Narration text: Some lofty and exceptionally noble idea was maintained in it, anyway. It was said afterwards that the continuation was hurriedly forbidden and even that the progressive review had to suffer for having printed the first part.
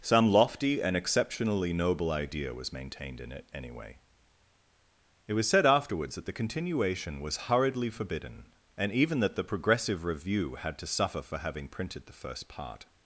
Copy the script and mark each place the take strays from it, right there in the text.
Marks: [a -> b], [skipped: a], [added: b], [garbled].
Some lofty and exceptionally noble idea was maintained in it, anyway. It was said afterwards that the continuation was hurriedly forbidden and even that the progressive review had to suffer for having printed the first part.